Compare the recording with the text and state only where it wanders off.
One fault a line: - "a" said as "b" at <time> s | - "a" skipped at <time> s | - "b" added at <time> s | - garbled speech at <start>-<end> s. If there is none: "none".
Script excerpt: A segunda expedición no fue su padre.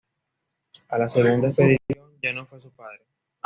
- "la" added at 1.0 s
- "ya" added at 2.2 s